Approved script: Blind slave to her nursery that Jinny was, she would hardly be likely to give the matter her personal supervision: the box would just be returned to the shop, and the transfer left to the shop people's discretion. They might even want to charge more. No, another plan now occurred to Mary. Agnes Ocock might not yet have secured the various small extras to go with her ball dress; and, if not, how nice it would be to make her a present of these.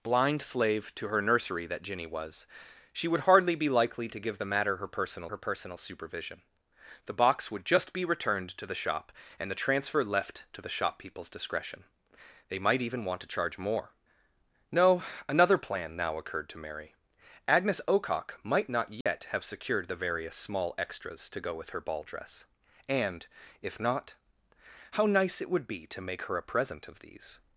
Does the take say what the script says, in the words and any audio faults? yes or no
no